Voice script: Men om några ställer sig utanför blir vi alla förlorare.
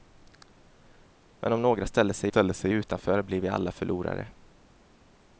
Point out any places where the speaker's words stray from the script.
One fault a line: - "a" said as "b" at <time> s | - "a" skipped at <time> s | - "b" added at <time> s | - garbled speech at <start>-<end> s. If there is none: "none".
- "ställer sig" added at 2.3 s